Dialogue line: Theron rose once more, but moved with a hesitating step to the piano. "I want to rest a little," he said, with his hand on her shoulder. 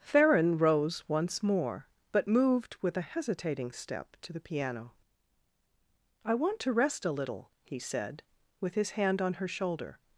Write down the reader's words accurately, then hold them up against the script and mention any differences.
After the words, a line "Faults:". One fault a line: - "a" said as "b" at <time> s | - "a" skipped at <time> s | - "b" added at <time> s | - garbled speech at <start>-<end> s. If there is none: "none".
Theron rose once more, but moved with a hesitating step to the piano. "I want to rest a little," he said, with his hand on her shoulder.
Faults:
none